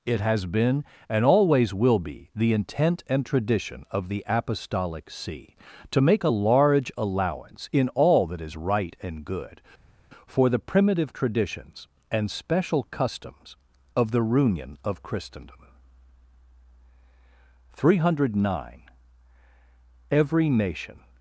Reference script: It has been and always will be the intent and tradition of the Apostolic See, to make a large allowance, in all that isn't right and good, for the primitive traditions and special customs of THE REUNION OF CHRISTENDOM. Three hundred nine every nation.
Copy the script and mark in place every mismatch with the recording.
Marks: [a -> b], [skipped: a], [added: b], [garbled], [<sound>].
It has been and always will be the intent and tradition of the Apostolic See, to make a large allowance, in all that [isn't -> is] right and good, for the primitive traditions and special customs of THE REUNION OF CHRISTENDOM. Three hundred nine every nation.